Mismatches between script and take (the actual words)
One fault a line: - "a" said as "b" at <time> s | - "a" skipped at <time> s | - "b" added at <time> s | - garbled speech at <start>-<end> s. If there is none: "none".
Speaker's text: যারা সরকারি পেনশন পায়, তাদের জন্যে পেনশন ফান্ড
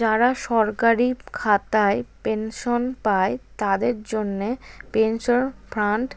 - "খাতায়" added at 1.3 s